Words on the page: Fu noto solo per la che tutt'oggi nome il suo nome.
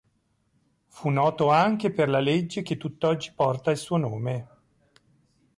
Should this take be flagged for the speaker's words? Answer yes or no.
yes